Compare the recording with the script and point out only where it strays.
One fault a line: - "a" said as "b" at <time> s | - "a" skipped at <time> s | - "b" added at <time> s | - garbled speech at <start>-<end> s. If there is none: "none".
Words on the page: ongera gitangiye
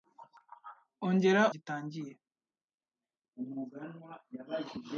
none